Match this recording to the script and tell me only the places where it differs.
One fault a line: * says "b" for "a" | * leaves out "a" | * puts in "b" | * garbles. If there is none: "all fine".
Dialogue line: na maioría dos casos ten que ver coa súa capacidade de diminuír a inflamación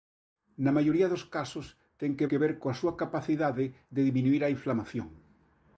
* puts in "que"